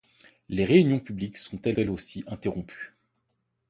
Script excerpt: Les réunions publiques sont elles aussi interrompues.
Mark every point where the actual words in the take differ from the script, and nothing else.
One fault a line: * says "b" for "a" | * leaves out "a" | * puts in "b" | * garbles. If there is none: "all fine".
* puts in "elles"